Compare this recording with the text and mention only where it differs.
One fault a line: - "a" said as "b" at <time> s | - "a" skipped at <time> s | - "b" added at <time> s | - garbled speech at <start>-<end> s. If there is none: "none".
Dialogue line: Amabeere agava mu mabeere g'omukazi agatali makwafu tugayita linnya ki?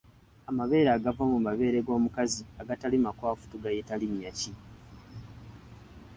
none